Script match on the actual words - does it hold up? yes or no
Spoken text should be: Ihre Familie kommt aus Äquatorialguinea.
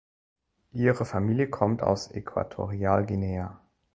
yes